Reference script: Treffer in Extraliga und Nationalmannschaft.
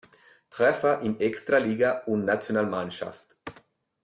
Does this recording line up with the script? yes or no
yes